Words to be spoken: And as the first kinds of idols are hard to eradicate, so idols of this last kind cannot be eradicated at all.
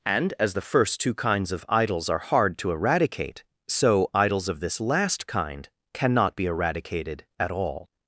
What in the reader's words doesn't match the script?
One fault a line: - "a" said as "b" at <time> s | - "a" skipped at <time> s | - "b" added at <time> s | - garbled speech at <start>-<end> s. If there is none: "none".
- "two" added at 1.0 s